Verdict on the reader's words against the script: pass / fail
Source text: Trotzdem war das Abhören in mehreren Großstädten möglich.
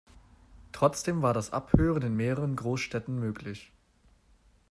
pass